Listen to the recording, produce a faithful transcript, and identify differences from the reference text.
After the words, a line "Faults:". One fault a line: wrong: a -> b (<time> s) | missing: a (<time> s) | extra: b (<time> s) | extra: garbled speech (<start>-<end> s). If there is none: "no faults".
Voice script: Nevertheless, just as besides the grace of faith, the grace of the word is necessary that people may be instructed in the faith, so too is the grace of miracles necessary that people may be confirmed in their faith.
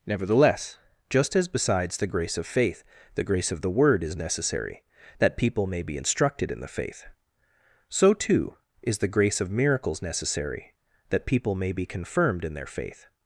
Nevertheless, just as besides the grace of faith, the grace of the word is necessary that people may be instructed in the faith, so too is the grace of miracles necessary that people may be confirmed in their faith.
Faults:
no faults